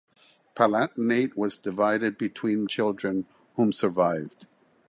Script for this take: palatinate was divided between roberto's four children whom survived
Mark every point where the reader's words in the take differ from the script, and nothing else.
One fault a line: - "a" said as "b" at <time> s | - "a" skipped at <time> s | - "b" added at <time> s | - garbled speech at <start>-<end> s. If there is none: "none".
- "roberto's four" skipped at 2.6 s